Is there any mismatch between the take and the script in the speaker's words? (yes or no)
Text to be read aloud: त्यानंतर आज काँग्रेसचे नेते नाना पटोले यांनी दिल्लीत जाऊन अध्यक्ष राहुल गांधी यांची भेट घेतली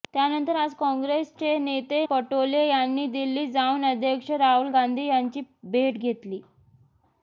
yes